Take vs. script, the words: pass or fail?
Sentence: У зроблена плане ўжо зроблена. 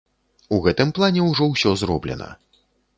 fail